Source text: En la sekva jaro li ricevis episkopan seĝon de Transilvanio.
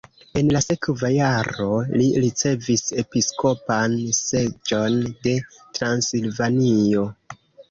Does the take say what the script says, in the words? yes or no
yes